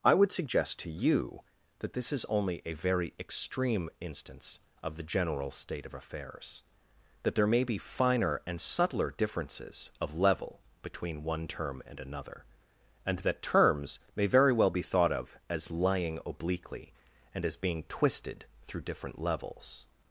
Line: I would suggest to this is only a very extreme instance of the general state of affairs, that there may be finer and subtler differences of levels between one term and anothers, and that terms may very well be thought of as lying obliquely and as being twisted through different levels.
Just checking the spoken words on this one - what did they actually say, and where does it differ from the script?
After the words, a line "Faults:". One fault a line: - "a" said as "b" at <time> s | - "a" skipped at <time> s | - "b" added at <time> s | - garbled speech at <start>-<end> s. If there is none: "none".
I would suggest to you that this is only a very extreme instance of the general state of affairs, that there may be finer and subtler differences of level between one term and another, and that terms may very well be thought of as lying obliquely and as being twisted through different levels.
Faults:
- "you that" added at 0.9 s
- "levels" said as "level" at 10.2 s
- "anothers" said as "another" at 12.0 s